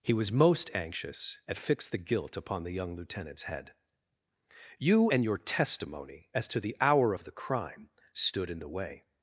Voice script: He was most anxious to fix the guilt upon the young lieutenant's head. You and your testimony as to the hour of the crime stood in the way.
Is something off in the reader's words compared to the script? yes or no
yes